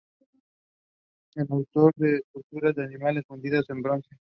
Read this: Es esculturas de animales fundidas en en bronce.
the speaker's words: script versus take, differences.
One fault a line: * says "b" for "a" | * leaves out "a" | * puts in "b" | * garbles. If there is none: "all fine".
* puts in "autor de"
* leaves out "en"